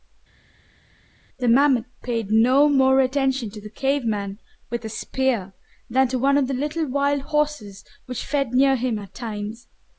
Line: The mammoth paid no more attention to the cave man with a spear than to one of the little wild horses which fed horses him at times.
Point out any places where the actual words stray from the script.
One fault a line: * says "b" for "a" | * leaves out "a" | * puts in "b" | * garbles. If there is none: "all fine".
* says "near" for "horses"